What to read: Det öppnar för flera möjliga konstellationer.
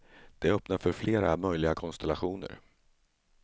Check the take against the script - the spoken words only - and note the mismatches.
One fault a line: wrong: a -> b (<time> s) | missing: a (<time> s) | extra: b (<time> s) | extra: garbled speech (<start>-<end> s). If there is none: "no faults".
no faults